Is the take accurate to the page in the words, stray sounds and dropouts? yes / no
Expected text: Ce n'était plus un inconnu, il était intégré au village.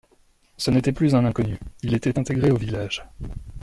yes